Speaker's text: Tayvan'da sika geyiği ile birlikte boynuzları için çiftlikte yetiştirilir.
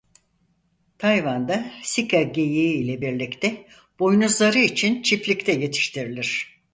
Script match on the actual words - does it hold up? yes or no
yes